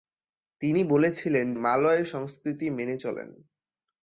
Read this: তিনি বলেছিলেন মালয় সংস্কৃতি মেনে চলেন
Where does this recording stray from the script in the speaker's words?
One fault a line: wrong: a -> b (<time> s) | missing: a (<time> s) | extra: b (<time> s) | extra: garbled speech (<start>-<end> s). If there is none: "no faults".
no faults